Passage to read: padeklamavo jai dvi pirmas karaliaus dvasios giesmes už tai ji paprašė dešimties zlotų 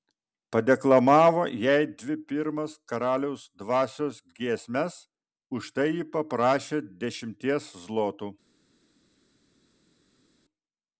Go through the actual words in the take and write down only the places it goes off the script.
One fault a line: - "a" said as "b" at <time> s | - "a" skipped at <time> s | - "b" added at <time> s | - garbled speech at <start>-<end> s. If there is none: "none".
none